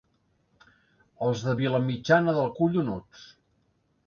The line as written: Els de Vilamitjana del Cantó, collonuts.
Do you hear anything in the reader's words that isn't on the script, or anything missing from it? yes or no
yes